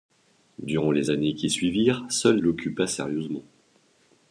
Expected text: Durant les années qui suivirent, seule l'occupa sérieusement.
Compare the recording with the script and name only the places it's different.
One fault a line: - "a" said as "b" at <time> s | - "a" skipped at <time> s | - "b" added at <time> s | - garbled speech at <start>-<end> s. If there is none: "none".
none